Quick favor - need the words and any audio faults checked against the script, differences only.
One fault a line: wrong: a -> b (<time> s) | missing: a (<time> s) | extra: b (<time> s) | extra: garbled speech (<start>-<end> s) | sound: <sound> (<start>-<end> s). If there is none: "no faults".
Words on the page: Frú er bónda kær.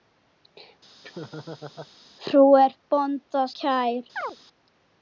sound: laugh (1.0-1.9 s)
sound: chirp (4.2-4.4 s)